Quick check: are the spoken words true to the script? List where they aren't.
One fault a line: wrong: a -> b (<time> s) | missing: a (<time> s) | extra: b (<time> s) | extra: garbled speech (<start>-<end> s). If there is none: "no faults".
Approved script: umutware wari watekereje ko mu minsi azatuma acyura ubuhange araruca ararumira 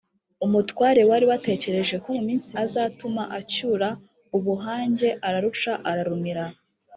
no faults